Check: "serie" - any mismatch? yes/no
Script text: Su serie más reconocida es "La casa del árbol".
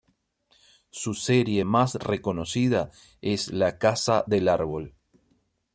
no